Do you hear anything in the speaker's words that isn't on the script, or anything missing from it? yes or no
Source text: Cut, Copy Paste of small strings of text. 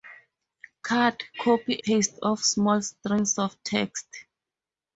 no